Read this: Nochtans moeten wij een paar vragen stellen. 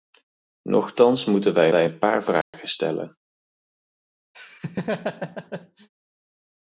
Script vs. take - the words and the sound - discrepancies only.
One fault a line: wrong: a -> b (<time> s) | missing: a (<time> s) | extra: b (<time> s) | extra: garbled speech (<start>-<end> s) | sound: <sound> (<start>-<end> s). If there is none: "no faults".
extra: wij (1.7 s)
sound: dropout (2.4-2.5 s)
sound: laugh (4.3-5.9 s)